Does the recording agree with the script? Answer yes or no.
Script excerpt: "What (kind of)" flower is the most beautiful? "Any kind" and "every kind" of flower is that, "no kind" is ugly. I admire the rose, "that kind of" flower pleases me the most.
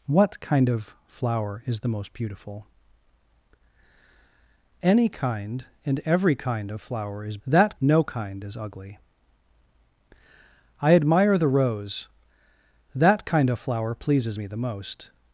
yes